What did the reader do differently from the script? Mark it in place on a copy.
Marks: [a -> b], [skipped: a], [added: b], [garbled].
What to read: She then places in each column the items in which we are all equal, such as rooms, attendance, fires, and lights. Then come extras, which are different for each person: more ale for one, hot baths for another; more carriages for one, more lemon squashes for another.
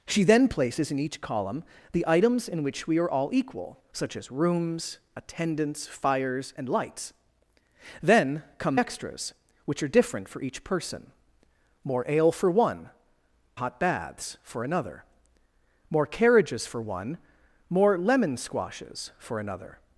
She then places in each column the items in which we are all equal, such as rooms, attendance, fires, and lights. Then come extras, which are different for each person: more ale for one, hot baths for another; more carriages for one, more lemon squashes for another.